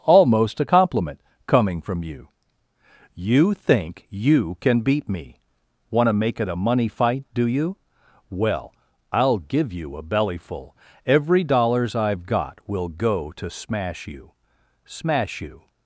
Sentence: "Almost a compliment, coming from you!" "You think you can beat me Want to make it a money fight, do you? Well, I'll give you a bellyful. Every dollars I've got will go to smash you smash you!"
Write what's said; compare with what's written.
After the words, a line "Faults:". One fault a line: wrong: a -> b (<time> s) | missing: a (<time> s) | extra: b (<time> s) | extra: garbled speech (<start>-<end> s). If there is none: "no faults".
"Almost a compliment, coming from you!" "You think you can beat me Want to make it a money fight, do you? Well, I'll give you a bellyful. Every dollars I've got will go to smash you smash you!"
Faults:
no faults